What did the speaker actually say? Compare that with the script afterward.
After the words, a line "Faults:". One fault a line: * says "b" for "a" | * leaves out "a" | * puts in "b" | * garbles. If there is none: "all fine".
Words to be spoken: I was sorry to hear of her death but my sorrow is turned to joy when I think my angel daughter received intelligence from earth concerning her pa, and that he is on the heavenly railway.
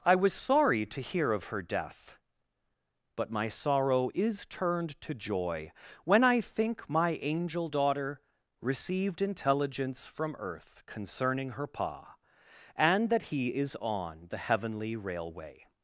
I was sorry to hear of her death but my sorrow is turned to joy when I think my angel daughter received intelligence from earth concerning her pa, and that he is on the heavenly railway.
Faults:
all fine